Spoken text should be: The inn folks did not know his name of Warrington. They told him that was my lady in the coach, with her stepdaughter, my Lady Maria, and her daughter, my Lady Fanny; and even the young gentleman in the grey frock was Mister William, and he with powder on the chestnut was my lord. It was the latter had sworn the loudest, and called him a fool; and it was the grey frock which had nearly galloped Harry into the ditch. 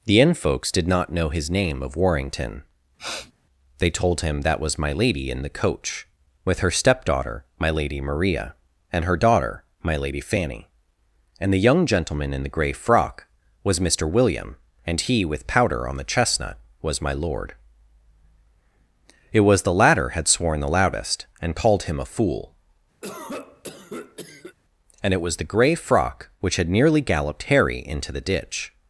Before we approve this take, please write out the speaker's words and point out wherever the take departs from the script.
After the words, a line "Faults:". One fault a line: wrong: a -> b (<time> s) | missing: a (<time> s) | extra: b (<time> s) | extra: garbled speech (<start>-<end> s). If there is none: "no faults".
The inn folks did not know his name of Warrington. They told him that was my lady in the coach, with her stepdaughter, my Lady Maria, and her daughter, my Lady Fanny; and the young gentleman in the grey frock was Mister William, and he with powder on the chestnut was my lord. It was the latter had sworn the loudest, and called him a fool; and it was the grey frock which had nearly galloped Harry into the ditch.
Faults:
missing: even (11.5 s)